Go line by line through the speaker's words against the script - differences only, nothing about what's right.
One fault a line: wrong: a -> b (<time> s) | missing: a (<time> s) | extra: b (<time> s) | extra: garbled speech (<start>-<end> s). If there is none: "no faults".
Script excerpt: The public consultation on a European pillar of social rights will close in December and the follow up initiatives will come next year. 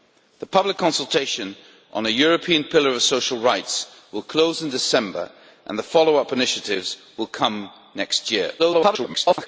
extra: garbled speech (8.6-9.5 s)